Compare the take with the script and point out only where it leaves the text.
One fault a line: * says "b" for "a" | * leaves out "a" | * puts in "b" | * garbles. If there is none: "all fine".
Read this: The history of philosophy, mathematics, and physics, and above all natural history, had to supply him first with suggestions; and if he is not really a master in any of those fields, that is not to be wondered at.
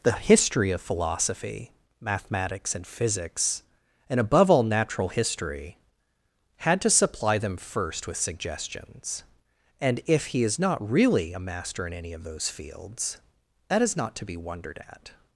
* says "them" for "him"